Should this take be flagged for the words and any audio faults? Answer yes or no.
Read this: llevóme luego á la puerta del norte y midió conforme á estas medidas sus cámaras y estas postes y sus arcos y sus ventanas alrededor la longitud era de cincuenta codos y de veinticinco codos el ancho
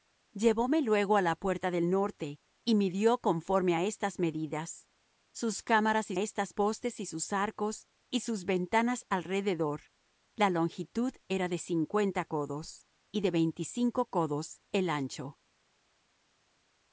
no